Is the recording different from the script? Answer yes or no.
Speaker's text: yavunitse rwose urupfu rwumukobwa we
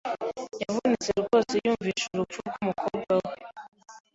yes